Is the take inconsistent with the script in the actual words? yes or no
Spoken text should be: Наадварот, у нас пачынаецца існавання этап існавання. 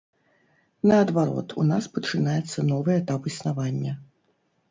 yes